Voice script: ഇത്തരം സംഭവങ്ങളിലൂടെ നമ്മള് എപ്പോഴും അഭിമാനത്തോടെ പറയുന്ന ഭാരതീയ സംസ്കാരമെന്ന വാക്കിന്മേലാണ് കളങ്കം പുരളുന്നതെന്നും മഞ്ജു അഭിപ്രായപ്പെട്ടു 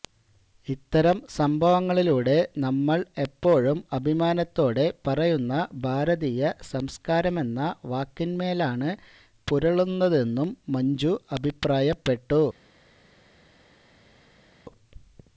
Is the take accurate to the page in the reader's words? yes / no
no